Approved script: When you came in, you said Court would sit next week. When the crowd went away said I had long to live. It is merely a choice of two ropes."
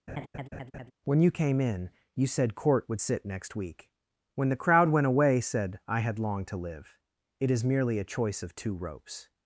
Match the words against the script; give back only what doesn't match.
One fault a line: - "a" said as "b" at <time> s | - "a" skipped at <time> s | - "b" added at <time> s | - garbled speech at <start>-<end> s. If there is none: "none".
none